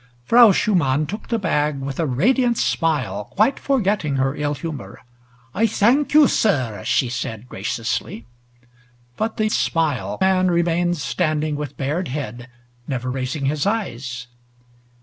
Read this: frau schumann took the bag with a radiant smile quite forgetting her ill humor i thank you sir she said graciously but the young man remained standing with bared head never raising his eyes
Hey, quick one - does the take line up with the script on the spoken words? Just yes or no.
no